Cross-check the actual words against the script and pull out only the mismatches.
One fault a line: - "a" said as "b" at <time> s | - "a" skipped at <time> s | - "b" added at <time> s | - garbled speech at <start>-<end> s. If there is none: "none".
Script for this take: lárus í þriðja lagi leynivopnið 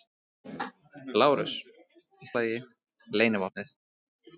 - "þriðja" skipped at 2.3 s